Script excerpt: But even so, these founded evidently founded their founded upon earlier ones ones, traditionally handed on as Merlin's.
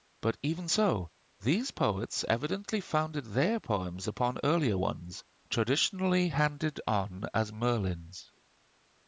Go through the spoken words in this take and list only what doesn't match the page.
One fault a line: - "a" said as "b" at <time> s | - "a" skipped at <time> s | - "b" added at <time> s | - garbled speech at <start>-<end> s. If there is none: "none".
- "founded" said as "poets" at 1.7 s
- "founded" said as "poems" at 3.6 s
- "ones" skipped at 5.2 s